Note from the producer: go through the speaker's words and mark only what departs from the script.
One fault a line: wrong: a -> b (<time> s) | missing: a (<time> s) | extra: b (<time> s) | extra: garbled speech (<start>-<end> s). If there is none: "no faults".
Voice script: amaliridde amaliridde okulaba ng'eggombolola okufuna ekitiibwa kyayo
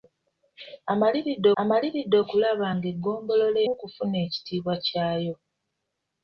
no faults